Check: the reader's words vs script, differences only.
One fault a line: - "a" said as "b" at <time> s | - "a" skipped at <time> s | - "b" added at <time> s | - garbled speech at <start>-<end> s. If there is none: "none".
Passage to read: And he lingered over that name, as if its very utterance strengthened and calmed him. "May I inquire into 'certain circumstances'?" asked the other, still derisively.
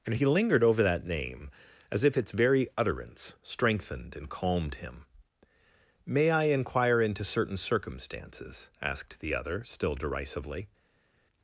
none